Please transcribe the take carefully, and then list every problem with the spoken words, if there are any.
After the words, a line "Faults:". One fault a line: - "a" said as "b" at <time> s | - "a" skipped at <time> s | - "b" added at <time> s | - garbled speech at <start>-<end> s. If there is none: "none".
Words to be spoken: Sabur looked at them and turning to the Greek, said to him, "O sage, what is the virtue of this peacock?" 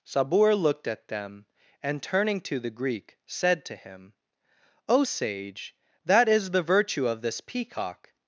Sabur looked at them and turning to the Greek, said to him, "O sage, that is the virtue of this peacock?"
Faults:
- "what" said as "that" at 6.0 s